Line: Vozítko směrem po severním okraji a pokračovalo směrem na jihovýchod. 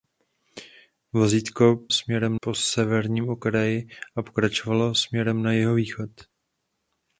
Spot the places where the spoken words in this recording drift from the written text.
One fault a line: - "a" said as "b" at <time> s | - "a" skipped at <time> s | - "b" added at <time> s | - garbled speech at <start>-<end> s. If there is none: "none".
none